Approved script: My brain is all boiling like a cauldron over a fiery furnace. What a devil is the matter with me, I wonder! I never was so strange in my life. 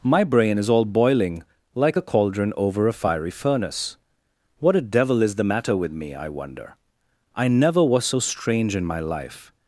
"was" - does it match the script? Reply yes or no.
yes